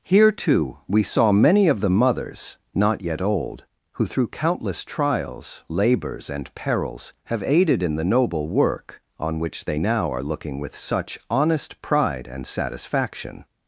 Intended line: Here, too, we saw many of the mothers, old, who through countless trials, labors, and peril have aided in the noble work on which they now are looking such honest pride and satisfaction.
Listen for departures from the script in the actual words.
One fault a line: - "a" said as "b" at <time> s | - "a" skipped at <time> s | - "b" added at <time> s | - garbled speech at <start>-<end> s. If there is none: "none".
- "not yet" added at 2.7 s
- "peril" said as "perils" at 6.5 s
- "with" added at 10.6 s